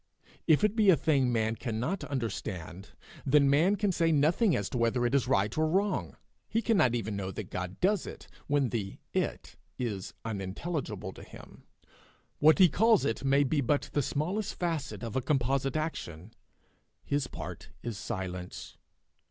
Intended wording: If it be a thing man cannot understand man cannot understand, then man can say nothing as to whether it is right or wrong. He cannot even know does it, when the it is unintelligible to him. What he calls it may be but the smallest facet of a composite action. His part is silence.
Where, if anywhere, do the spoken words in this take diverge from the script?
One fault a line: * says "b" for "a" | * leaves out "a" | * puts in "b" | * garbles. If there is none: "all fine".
* leaves out "man cannot understand"
* puts in "that God"